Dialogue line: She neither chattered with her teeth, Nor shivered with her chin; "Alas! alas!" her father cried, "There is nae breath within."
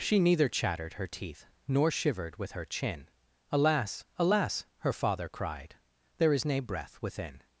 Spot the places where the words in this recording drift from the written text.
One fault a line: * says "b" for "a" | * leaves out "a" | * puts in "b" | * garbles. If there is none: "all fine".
* leaves out "with"